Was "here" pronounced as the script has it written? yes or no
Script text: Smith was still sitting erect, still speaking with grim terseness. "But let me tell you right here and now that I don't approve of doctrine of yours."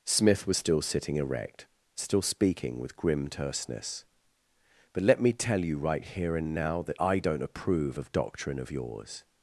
yes